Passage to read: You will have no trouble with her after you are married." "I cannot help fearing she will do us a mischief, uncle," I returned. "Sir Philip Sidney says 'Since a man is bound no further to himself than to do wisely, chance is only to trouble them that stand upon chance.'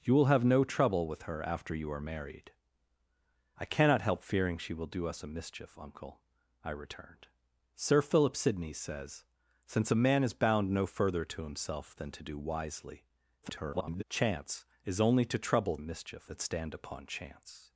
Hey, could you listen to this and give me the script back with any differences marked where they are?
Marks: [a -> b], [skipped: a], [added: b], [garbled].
You will have no trouble with her after you are married." "I cannot help fearing she will do us a mischief, uncle," I returned. "Sir Philip Sidney says 'Since a man is bound no further to himself than to do wisely, [garbled] chance is only to trouble [them -> mischief] that stand upon chance.'